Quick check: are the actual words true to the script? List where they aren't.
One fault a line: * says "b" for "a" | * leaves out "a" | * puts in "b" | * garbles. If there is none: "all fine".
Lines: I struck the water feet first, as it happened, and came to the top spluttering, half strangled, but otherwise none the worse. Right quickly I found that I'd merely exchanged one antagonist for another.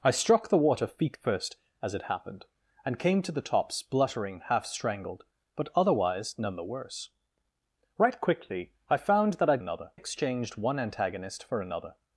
* says "another" for "merely"